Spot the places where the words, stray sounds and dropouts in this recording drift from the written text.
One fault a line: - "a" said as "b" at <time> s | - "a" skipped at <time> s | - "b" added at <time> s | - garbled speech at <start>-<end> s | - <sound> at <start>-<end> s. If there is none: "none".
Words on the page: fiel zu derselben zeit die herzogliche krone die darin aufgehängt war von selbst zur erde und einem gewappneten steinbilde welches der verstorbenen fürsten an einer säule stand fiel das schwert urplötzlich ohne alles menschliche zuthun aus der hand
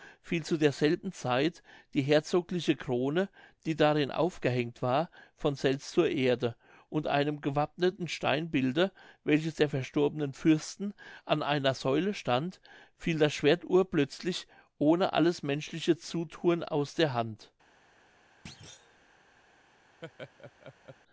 - thud at 18.5-19.0 s
- laugh at 20.0-21.0 s